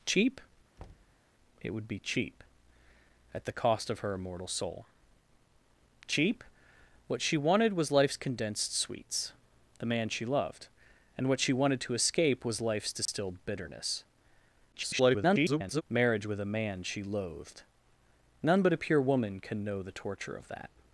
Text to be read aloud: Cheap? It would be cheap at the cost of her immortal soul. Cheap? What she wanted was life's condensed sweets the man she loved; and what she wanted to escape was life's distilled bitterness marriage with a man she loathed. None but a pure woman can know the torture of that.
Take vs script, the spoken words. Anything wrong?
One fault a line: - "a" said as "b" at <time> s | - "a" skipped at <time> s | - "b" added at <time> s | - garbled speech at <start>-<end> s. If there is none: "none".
- garbled speech at 14.7-15.8 s